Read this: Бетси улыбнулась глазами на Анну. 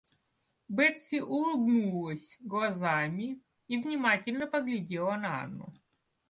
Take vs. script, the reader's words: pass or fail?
fail